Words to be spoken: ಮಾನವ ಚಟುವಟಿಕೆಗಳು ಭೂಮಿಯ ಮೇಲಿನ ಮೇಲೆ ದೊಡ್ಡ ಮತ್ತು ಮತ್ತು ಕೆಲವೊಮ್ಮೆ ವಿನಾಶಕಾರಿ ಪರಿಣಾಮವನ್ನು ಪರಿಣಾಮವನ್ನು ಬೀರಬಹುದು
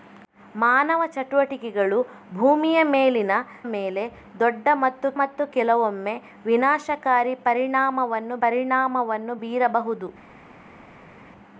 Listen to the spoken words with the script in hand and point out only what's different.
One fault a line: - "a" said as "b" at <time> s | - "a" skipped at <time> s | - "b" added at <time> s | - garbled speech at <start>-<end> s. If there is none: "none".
none